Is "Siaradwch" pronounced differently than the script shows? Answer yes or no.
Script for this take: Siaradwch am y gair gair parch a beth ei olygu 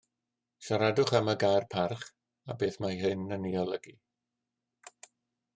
no